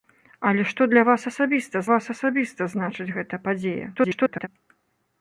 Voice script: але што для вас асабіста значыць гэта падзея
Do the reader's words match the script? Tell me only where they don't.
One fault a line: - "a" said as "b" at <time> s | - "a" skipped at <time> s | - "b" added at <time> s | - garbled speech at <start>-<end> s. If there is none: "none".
- "вас асабіста" added at 1.9 s
- garbled speech at 4.0-4.5 s